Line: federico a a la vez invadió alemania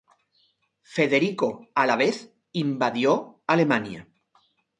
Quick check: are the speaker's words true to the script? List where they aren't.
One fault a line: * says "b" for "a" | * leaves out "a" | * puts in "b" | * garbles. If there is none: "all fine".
* leaves out "a"